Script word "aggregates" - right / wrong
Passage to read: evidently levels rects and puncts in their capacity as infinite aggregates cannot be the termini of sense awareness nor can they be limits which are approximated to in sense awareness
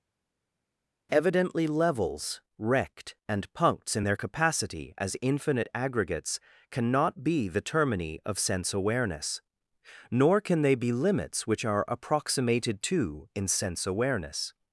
right